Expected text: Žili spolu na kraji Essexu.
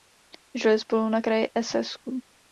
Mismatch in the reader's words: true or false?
false